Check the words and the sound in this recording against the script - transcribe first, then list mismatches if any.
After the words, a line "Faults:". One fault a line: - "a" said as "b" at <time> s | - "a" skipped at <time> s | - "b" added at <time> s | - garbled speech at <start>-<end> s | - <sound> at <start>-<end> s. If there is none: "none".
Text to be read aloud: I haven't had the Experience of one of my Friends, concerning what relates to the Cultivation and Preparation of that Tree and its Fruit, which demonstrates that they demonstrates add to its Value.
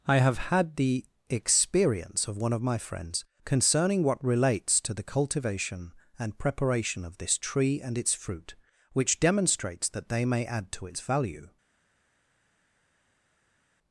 I have had the Experience of one of my Friends, concerning what relates to the Cultivation and Preparation of this Tree and its Fruit, which demonstrates that they may add to its Value.
Faults:
- "haven't" said as "have" at 0.2 s
- "that" said as "this" at 7.2 s
- "demonstrates" said as "may" at 10.2 s